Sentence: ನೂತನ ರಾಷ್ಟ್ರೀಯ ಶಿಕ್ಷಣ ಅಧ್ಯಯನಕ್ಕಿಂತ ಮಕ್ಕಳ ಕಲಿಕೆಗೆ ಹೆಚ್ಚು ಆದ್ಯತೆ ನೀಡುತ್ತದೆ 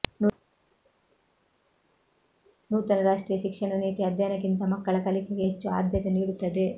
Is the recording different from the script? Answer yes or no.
yes